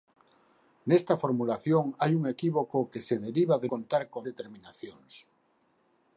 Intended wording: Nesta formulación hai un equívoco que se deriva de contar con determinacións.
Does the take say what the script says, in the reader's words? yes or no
yes